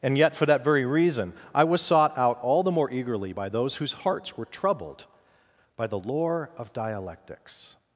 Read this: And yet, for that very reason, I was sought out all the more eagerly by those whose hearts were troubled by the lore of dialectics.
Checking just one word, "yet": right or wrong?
right